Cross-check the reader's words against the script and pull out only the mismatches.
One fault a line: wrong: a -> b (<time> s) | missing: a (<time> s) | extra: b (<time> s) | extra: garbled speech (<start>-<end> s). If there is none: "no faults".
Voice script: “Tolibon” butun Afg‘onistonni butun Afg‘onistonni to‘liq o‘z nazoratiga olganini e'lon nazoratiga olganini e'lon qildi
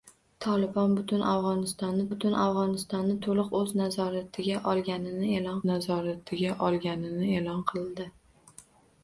no faults